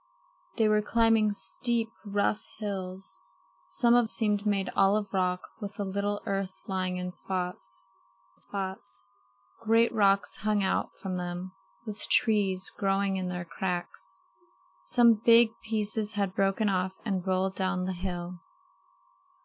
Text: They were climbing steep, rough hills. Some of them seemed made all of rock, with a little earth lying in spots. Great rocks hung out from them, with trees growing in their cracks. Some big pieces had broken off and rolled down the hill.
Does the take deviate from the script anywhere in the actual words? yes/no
yes